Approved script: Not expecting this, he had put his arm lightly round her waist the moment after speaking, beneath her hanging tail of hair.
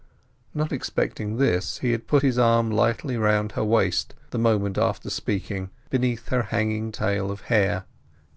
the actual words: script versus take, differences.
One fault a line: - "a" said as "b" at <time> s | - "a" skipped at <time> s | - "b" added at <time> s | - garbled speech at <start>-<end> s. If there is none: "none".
none